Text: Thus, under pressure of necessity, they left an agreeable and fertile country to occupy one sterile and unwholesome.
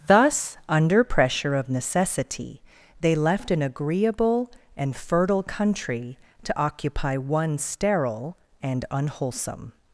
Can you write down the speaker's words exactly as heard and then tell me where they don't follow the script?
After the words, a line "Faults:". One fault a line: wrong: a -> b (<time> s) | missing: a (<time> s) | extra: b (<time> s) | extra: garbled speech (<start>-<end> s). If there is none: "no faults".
Thus, under pressure of necessity, they left an agreeable and fertile country to occupy one sterile and unwholesome.
Faults:
no faults